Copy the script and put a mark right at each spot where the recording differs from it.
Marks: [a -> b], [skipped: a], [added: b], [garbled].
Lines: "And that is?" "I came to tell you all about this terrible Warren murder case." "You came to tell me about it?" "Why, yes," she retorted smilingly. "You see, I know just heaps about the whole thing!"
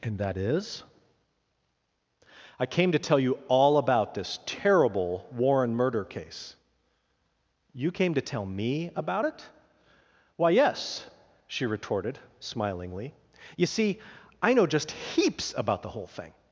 "And that is?" "I came to tell you all about this terrible Warren murder case." "You came to tell me about it?" "Why, yes," she retorted smilingly. "You see, I know just heaps about the whole thing!"